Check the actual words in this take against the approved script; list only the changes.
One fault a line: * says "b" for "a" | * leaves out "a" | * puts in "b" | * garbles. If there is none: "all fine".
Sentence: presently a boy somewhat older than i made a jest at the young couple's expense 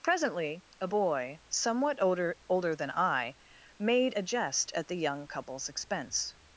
* puts in "older"